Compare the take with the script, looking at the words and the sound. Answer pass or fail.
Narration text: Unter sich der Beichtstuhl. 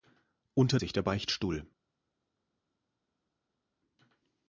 pass